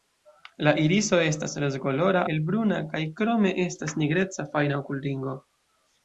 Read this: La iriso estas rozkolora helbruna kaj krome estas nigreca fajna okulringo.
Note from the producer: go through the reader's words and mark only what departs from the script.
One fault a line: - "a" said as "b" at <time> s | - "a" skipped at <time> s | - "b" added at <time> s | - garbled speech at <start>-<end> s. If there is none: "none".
none